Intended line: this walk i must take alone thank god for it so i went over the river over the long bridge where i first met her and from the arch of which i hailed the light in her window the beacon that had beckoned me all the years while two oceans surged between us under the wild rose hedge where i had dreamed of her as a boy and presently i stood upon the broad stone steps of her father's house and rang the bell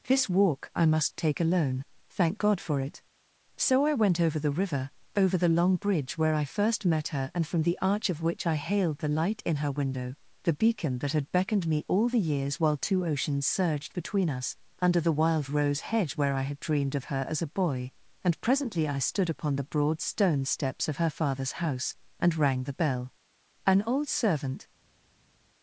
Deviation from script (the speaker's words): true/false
true